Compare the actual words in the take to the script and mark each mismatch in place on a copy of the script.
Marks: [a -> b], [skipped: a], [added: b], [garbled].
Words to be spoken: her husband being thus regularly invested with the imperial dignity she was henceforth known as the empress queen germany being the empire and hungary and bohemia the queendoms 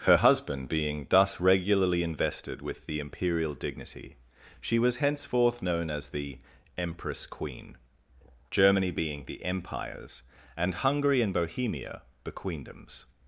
her husband being thus regularly invested with the imperial dignity she was henceforth known as the empress queen germany being the [empire -> empires] and hungary and bohemia the queendoms